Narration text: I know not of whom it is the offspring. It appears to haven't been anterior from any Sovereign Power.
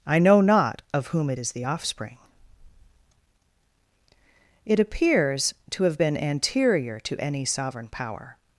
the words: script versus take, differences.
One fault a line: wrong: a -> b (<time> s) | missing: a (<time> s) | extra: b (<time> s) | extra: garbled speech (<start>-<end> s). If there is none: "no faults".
wrong: haven't -> have (5.8 s)
wrong: from -> to (7.0 s)